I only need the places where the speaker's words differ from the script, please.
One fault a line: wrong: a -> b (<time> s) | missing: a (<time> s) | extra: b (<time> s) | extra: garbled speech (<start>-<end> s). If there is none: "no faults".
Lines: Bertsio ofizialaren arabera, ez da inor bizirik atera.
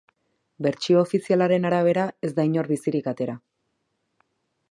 no faults